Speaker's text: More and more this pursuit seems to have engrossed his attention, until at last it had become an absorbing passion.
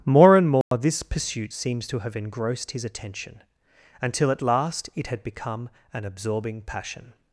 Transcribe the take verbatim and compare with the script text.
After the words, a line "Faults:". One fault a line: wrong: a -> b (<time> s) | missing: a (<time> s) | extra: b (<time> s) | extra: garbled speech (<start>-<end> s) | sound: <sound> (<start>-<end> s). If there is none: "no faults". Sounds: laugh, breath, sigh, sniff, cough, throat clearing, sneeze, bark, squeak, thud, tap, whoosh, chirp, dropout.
More and more this pursuit seems to have engrossed his attention, until at last it had become an absorbing passion.
Faults:
sound: dropout (0.6-0.7 s)